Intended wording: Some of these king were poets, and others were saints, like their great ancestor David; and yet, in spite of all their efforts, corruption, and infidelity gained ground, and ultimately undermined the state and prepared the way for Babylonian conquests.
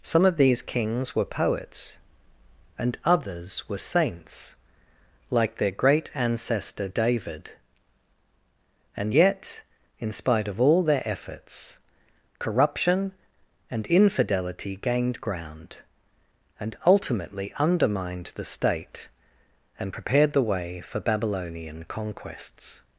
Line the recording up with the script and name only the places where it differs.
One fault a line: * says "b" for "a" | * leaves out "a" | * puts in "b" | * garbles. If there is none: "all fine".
* says "kings" for "king"